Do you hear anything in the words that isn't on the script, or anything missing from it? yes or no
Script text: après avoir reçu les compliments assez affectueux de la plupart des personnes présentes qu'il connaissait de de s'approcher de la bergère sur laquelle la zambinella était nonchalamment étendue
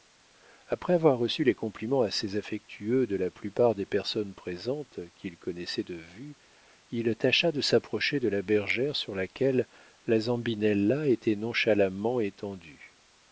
yes